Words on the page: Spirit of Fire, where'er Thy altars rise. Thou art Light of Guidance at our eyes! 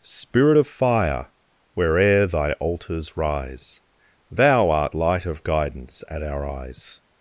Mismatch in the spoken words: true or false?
false